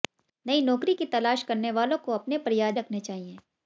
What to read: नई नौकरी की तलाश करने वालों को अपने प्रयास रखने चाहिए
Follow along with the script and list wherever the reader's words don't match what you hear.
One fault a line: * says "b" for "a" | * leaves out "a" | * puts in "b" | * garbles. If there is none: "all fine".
all fine